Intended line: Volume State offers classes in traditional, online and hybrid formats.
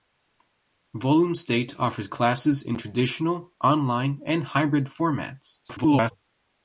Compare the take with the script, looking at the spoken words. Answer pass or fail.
fail